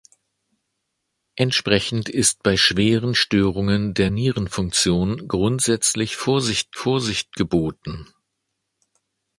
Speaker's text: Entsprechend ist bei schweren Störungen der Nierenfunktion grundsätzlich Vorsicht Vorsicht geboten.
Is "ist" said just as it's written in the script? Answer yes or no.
yes